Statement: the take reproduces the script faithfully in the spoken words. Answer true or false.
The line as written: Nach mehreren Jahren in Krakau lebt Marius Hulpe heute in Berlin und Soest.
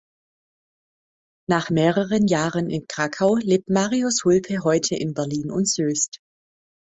true